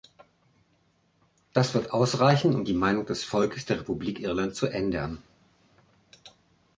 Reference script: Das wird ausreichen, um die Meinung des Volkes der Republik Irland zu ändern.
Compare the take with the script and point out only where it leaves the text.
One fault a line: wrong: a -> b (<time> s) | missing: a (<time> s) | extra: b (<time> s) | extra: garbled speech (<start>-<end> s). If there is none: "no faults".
no faults